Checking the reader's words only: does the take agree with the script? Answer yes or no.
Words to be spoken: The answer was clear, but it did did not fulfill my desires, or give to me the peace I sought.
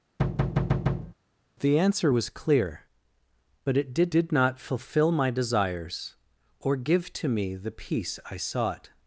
yes